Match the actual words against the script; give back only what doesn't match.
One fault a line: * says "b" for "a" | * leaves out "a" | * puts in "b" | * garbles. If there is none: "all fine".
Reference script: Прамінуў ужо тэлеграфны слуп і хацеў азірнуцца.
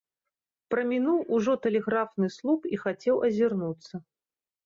all fine